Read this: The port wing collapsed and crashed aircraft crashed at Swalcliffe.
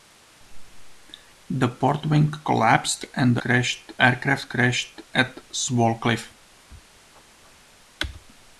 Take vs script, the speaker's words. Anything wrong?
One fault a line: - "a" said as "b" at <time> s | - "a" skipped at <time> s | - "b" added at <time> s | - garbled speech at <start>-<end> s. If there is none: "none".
none